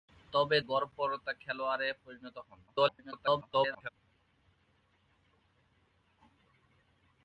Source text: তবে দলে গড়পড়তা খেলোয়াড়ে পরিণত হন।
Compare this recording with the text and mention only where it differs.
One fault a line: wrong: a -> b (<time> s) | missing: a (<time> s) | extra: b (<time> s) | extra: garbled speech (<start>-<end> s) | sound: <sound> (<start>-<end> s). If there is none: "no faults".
missing: দলে (0.6 s)
extra: garbled speech (2.7-3.9 s)